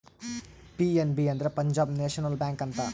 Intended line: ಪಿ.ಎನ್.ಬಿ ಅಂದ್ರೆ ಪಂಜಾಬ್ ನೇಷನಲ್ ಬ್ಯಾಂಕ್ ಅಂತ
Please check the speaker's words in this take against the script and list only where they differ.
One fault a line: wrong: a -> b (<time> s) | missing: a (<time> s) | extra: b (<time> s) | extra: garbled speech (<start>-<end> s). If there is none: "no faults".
no faults